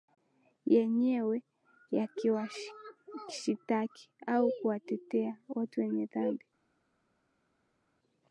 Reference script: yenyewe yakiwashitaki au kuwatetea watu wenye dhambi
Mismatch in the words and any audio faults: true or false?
false